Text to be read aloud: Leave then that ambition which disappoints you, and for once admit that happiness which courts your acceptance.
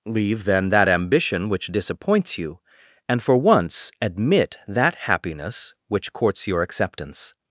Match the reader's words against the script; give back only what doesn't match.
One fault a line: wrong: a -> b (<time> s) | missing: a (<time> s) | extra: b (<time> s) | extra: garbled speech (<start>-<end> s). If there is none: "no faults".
no faults